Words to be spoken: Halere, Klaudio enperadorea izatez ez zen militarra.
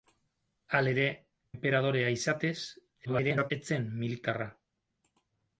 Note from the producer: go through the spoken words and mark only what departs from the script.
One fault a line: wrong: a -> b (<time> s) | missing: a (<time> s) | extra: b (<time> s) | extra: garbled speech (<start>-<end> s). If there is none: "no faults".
missing: Klaudio (1.0 s)
extra: garbled speech (3.0-3.5 s)